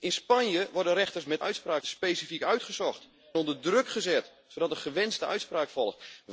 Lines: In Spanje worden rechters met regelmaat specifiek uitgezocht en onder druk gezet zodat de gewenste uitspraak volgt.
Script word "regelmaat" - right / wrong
wrong